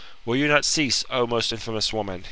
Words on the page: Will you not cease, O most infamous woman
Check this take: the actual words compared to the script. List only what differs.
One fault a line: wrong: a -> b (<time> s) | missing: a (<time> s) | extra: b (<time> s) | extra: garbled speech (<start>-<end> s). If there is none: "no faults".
no faults